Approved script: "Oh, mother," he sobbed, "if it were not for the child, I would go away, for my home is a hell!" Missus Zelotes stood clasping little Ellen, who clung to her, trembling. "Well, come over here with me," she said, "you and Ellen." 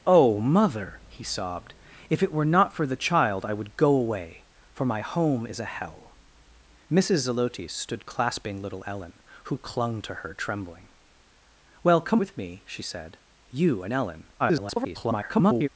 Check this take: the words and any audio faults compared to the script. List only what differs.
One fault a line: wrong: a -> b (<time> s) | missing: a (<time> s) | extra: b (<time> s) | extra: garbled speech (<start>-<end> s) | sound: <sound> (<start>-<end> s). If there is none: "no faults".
missing: over here (12.2 s)
extra: garbled speech (14.4-15.7 s)